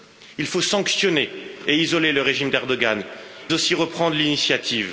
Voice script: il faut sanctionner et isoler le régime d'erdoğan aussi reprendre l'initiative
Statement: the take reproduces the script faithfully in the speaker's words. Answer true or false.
true